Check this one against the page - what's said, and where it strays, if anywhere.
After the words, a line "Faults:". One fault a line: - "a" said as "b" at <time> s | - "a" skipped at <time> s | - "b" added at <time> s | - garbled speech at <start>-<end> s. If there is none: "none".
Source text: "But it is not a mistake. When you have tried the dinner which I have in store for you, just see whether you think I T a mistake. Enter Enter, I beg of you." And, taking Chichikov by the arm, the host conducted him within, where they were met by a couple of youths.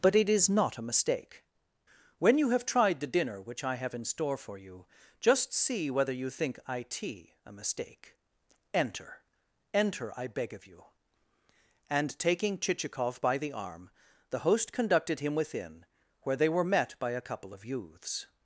"But it is not a mistake. When you have tried the dinner which I have in store for you, just see whether you think I T a mistake. Enter Enter, I beg of you." And, taking Chichikov by the arm, the host conducted him within, where they were met by a couple of youths.
Faults:
none